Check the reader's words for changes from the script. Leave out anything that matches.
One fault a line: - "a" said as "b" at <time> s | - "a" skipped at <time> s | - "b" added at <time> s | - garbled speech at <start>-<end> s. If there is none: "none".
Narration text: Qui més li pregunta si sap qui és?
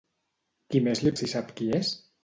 - "pregunta" skipped at 1.1 s